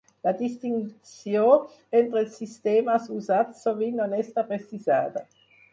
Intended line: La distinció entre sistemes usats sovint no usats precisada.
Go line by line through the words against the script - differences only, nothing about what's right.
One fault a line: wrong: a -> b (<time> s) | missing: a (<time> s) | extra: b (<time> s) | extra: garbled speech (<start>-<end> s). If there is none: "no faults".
extra: els (2.2 s)
wrong: usats -> està (4.2 s)